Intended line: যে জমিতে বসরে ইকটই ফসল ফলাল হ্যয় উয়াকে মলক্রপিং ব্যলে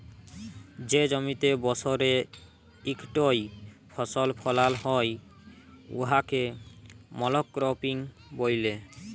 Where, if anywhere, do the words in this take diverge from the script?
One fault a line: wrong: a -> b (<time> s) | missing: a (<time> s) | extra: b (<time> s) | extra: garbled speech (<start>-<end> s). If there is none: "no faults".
no faults